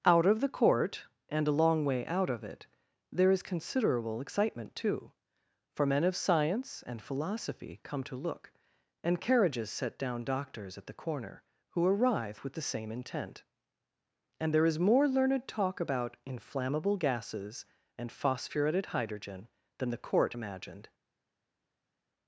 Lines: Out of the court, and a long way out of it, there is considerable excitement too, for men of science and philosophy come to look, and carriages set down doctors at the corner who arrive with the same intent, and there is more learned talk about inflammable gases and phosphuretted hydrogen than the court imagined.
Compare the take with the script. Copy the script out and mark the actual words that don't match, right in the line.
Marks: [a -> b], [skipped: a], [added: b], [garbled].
Out of the court, and a long way out of it, there is considerable excitement too, for men of science and philosophy come to look, and carriages set down doctors at the corner who arrive with the same intent, and there is more learned talk about inflammable gases and phosphuretted hydrogen than the court imagined.